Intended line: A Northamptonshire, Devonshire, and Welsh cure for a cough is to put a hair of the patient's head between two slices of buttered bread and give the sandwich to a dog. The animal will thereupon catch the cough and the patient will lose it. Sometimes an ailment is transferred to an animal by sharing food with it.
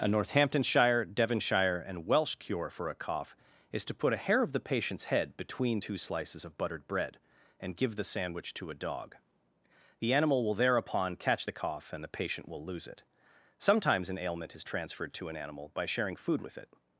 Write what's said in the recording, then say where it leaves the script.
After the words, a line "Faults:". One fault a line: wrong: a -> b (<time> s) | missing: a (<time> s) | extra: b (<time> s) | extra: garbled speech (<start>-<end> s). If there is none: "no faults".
A Northamptonshire, Devonshire, and Welsh cure for a cough is to put a hair of the patient's head between two slices of buttered bread and give the sandwich to a dog. The animal will thereupon catch the cough and the patient will lose it. Sometimes an ailment is transferred to an animal by sharing food with it.
Faults:
no faults